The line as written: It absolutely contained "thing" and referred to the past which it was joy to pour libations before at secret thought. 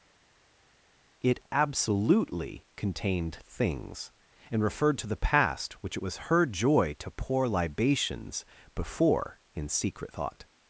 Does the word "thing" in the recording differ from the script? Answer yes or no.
yes